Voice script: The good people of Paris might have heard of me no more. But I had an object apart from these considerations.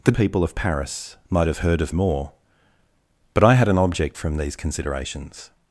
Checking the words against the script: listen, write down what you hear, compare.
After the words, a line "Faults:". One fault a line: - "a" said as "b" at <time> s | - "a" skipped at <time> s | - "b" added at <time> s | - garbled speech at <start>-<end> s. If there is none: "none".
The people of Paris might have heard of more. But I had an object from these considerations.
Faults:
- "good" skipped at 0.1 s
- "me no" skipped at 2.0 s
- "apart" skipped at 4.2 s